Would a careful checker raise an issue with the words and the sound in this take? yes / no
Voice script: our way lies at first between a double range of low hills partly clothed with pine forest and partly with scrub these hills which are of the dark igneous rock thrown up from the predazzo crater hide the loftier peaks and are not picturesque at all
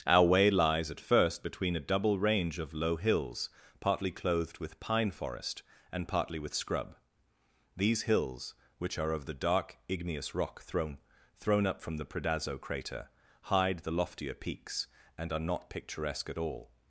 yes